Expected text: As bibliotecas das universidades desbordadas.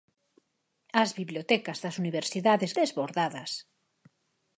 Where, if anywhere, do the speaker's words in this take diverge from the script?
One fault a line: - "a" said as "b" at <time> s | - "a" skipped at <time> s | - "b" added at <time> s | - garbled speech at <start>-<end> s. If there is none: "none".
none